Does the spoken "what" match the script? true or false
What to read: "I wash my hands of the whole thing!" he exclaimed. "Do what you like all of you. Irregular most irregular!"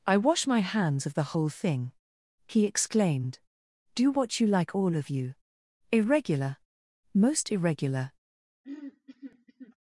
true